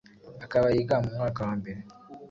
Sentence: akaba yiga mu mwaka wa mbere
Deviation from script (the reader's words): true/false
false